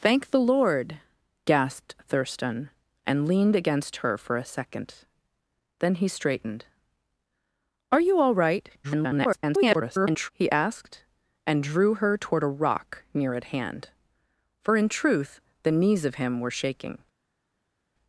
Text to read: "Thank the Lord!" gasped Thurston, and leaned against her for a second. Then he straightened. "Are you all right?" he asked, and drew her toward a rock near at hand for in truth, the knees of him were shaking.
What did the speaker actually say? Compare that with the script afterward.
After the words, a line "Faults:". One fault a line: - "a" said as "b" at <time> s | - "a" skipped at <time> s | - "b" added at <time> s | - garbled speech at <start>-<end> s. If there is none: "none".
"Thank the Lord!" gasped Thurston, and leaned against her for a second. Then he straightened. "Are you all right?" [garbled] he asked, and drew her toward a rock near at hand for in truth, the knees of him were shaking.
Faults:
- garbled speech at 8.8-10.3 s